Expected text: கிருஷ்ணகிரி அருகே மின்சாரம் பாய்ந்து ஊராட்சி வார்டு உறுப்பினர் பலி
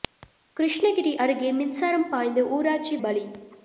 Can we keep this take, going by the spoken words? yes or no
no